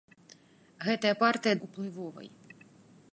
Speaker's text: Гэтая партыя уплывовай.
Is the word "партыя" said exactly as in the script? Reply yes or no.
yes